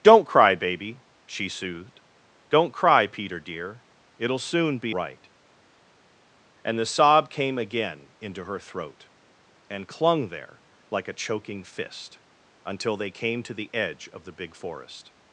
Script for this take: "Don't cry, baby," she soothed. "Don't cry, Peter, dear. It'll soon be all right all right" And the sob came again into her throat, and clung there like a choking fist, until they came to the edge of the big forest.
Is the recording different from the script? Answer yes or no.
yes